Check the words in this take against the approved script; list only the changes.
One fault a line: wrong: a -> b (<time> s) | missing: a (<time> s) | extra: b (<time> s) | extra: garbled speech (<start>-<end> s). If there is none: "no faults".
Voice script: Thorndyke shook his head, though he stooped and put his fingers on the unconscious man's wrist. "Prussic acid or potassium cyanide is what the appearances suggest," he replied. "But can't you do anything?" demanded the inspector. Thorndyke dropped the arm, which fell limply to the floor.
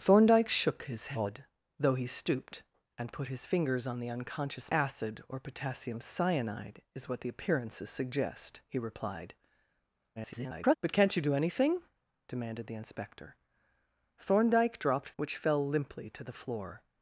missing: man's wrist Prussic (4.7 s)
extra: garbled speech (10.2-10.8 s)
missing: the arm (15.1 s)